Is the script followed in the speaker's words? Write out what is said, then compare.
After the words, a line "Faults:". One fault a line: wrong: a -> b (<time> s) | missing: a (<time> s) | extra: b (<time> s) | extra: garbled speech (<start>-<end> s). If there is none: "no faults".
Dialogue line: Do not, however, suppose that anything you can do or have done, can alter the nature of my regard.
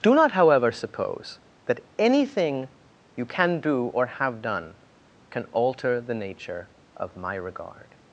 Do not, however, suppose that anything you can do or have done, can alter the nature of my regard.
Faults:
no faults